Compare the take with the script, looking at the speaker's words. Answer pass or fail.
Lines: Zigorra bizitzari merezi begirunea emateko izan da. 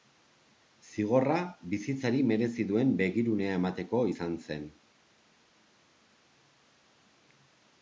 fail